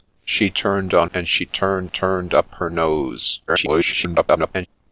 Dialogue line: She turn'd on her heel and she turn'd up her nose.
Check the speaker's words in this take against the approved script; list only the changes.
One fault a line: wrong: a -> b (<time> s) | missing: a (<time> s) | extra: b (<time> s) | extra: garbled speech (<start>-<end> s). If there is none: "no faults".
missing: her heel (1.1 s)
extra: turn'd (1.9 s)
extra: garbled speech (3.5-4.7 s)